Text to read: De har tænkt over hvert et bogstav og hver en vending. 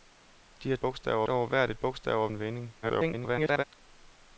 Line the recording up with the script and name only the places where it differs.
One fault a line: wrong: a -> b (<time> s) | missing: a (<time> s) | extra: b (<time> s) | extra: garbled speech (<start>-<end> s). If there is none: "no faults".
wrong: tænkt -> bogstav (0.8 s)
missing: hver (2.3 s)
extra: garbled speech (2.8-3.6 s)